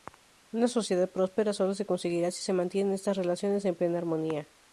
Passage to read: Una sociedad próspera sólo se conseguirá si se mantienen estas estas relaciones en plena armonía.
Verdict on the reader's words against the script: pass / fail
fail